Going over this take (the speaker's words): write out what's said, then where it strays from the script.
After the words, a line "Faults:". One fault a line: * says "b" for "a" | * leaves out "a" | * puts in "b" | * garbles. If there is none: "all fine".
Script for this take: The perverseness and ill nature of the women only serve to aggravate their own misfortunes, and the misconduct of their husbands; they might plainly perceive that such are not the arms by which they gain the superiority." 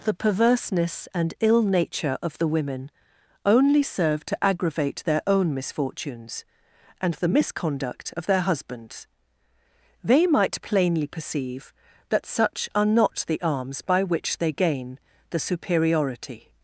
The perverseness and ill nature of the women only serve to aggravate their own misfortunes, and the misconduct of their husbands; they might plainly perceive that such are not the arms by which they gain the superiority."
Faults:
all fine